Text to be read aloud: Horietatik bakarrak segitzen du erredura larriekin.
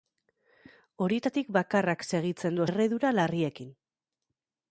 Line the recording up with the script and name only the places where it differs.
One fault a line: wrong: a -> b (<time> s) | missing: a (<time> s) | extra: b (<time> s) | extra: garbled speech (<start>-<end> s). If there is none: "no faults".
no faults